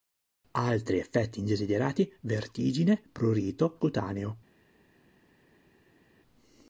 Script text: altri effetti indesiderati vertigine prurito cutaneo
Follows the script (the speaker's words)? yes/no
yes